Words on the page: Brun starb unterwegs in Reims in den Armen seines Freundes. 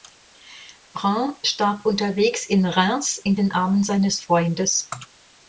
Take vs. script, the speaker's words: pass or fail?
pass